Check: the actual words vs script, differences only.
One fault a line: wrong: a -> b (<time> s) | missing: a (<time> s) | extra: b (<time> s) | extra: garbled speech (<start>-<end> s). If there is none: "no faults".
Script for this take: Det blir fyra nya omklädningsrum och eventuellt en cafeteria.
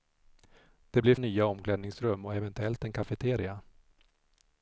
missing: fyra (1.1 s)